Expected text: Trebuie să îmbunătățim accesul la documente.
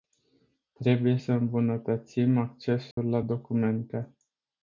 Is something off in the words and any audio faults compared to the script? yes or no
yes